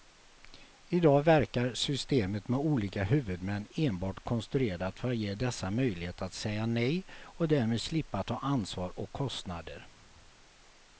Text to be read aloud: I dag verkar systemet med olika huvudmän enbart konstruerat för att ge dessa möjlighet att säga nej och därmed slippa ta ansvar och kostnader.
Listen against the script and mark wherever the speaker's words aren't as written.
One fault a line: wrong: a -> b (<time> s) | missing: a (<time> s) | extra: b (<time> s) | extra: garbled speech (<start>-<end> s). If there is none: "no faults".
no faults